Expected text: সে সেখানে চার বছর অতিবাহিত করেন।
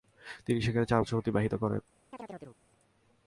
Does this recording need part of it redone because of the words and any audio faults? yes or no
yes